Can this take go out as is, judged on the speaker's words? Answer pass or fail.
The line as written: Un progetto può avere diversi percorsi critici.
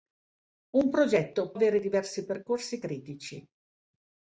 fail